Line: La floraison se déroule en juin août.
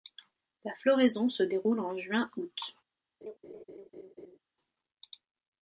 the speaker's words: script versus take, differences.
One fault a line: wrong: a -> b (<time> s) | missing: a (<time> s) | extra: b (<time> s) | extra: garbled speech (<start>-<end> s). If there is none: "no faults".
no faults